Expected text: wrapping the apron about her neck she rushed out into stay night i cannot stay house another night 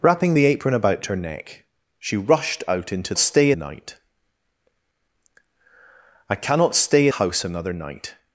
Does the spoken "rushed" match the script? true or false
true